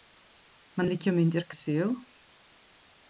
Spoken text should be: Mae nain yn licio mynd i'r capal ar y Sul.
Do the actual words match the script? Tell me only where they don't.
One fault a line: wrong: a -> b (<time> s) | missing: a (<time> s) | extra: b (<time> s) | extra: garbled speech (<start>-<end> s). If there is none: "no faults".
missing: nain (0.9 s)
missing: capal ar (1.5 s)